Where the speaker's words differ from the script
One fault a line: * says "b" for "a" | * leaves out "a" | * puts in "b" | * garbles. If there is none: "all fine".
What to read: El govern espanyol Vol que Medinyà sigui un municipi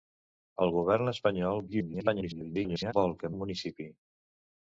* garbles
* leaves out "Medinyà sigui"